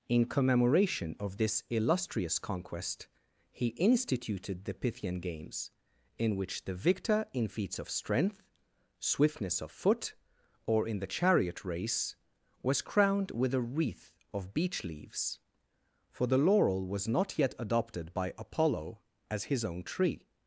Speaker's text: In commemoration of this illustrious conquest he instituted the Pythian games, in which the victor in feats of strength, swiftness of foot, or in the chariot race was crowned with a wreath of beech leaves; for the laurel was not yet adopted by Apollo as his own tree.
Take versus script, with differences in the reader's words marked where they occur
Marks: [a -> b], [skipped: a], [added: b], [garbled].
In commemoration of this illustrious conquest he instituted the Pythian games, in which the victor in feats of strength, swiftness of foot, or in the chariot race was crowned with a wreath of beech leaves; for the laurel was not yet adopted by Apollo as his own tree.